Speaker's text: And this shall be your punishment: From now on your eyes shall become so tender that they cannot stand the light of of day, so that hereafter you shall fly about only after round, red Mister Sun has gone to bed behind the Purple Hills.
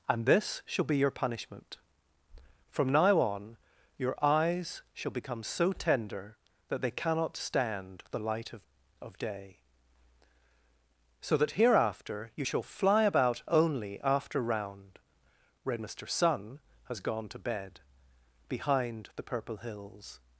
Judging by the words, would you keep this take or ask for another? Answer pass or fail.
pass